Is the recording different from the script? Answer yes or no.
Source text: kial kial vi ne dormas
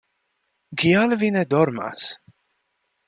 yes